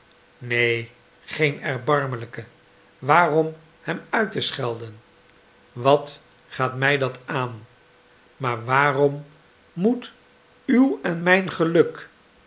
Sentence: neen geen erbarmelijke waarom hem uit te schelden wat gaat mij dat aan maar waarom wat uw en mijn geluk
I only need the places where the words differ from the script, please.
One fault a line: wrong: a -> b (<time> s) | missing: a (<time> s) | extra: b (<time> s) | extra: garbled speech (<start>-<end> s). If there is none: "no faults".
wrong: wat -> moet (9.7 s)